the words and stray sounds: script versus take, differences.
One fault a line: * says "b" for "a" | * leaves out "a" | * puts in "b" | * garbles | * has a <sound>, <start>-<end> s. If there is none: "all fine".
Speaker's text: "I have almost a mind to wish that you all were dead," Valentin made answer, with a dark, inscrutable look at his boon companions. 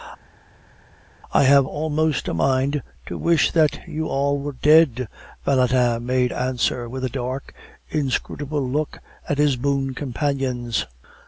all fine